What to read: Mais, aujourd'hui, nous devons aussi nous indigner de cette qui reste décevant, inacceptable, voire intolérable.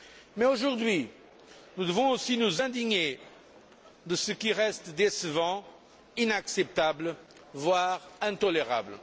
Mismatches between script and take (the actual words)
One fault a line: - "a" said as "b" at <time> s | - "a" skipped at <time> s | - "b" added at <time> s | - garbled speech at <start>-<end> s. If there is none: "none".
- "cette" said as "ce" at 4.1 s